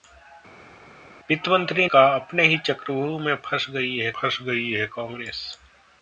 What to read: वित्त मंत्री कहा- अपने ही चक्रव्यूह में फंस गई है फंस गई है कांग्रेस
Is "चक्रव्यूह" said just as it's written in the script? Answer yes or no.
yes